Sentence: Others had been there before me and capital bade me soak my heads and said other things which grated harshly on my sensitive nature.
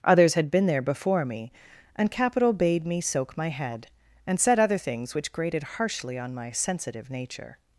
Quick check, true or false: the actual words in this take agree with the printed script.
false